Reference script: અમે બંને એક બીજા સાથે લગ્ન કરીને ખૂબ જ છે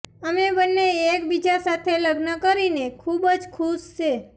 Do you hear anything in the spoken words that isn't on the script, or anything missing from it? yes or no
yes